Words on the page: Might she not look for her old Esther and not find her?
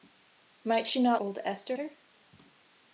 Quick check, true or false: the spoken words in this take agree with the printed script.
false